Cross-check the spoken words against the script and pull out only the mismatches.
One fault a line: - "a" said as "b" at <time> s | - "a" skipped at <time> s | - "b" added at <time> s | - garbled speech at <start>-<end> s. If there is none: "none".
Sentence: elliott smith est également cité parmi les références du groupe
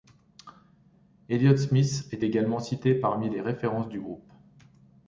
none